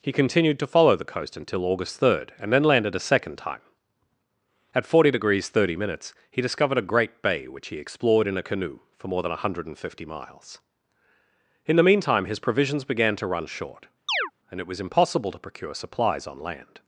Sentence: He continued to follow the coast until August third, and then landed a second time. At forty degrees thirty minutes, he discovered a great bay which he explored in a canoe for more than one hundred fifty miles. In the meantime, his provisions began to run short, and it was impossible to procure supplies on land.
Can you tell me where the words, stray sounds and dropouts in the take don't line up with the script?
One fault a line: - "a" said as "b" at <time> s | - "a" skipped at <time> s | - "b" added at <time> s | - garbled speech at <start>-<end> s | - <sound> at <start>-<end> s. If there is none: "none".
- chirp at 14.1-14.3 s